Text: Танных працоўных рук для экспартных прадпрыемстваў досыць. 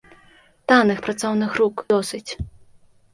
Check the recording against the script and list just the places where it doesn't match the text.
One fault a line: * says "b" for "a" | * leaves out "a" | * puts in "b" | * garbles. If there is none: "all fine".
* leaves out "для экспартных прадпрыемстваў"